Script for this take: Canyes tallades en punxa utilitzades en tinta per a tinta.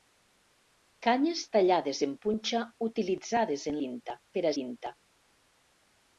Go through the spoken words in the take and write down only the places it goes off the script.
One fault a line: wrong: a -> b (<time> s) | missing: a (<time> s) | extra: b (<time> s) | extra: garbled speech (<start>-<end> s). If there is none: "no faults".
no faults